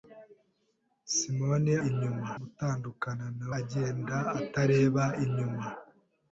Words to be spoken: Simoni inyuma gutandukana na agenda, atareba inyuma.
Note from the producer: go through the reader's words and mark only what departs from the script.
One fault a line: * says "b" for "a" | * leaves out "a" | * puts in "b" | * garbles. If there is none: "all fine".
all fine